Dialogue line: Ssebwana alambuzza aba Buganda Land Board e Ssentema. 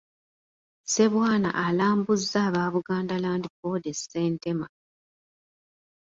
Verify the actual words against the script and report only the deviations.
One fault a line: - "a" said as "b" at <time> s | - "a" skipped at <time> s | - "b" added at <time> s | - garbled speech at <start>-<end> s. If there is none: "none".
none